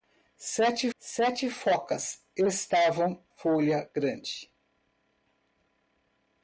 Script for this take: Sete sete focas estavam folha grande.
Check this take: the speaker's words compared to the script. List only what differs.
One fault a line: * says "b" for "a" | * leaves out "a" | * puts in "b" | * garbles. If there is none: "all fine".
all fine